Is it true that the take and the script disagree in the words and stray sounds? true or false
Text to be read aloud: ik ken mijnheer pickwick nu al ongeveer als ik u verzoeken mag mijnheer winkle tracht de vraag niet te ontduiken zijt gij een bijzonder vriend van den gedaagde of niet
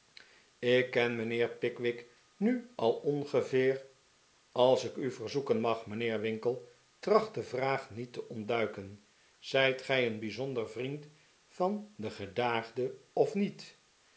false